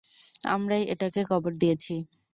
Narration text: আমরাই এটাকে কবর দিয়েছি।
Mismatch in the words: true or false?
false